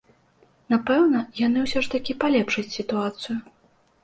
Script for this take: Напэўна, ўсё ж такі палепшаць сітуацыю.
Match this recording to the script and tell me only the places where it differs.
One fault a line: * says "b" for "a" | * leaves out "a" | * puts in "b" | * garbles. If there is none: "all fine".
* puts in "яны"